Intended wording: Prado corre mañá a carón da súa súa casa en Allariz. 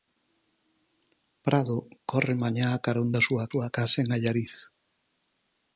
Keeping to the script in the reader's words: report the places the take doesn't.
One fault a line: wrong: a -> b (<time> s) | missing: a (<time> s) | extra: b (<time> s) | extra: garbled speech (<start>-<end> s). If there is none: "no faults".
no faults